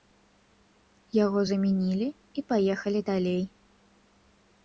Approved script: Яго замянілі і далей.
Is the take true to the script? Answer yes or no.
no